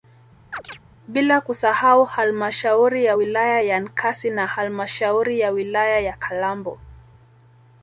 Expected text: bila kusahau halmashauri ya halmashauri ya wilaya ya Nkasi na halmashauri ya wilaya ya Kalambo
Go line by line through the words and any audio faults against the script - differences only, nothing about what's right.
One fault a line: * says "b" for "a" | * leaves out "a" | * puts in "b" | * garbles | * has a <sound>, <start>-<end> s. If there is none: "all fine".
* has a chirp, 0.5-0.8 s
* leaves out "halmashauri ya"